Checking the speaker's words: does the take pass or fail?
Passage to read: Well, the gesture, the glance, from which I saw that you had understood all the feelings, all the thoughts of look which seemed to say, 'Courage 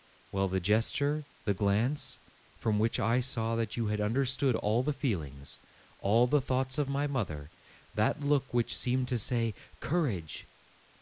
fail